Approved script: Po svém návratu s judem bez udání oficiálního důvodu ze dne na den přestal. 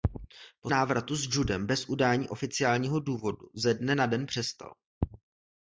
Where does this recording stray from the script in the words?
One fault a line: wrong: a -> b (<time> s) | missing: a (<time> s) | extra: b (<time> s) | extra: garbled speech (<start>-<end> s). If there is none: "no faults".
missing: svém (0.7 s)